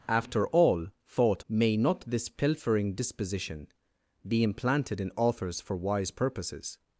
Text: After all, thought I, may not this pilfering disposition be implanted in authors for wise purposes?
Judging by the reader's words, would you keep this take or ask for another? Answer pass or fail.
fail